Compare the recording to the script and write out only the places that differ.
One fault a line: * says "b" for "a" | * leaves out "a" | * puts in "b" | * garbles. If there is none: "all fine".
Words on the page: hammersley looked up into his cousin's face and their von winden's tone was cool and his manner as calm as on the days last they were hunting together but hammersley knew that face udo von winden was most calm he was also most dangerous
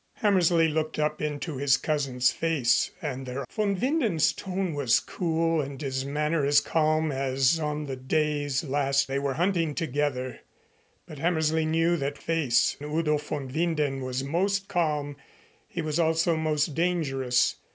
all fine